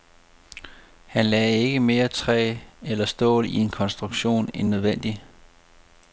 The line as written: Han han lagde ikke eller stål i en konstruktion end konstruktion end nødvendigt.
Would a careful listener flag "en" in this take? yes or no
no